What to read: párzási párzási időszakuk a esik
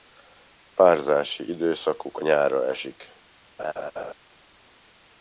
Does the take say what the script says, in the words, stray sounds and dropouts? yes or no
no